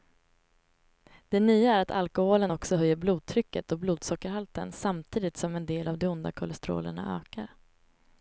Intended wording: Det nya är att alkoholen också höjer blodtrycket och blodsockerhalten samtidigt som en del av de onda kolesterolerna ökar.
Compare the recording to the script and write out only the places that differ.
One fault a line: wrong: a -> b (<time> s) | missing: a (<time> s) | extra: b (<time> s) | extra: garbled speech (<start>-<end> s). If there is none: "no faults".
no faults